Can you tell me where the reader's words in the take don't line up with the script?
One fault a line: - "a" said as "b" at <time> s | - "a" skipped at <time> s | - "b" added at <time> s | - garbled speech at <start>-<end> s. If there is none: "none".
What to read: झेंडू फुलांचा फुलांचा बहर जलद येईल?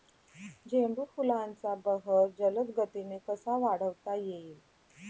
- "फुलांचा" skipped at 1.8 s
- "गतीने कसा वाढवता" added at 2.8 s